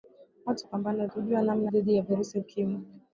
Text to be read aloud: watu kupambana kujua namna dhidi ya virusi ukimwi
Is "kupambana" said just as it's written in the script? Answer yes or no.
yes